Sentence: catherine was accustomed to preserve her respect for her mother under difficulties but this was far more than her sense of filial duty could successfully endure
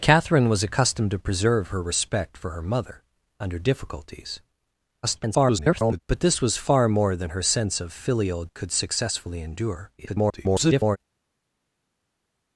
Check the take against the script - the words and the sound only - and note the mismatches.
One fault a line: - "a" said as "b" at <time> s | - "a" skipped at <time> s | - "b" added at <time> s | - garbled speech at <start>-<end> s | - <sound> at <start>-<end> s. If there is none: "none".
- garbled speech at 5.0-6.0 s
- "duty" skipped at 8.5 s
- garbled speech at 10.0-11.0 s